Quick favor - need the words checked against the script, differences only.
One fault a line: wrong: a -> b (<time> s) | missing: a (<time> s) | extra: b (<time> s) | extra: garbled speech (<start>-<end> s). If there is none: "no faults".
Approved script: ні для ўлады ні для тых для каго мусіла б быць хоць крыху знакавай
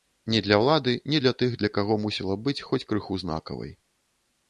no faults